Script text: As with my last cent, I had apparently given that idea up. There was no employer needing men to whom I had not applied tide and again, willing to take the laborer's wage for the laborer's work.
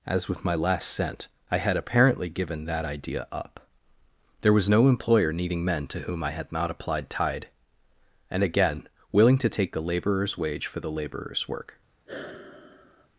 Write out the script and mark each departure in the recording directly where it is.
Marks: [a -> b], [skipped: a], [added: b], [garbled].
As with my last cent, I had apparently given that idea up. There was no employer needing men to whom I had not applied tide and again, willing to take the laborer's wage for the laborer's work.